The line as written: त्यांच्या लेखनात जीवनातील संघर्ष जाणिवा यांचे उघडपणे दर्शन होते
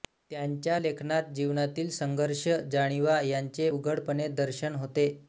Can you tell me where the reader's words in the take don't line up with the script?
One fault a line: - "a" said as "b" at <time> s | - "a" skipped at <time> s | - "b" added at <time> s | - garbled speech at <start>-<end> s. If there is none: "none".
none